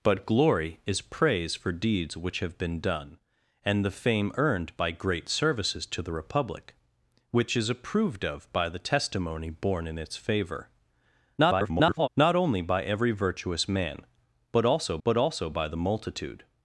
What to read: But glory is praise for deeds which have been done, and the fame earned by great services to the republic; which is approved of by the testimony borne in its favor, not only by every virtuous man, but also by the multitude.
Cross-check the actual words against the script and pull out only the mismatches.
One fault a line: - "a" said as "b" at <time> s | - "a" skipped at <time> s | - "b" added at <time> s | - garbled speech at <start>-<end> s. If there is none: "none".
- garbled speech at 11.4-12.1 s
- "but also" added at 15.0 s